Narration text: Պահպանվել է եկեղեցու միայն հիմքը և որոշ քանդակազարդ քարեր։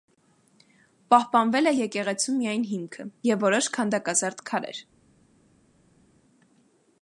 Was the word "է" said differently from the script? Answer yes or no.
no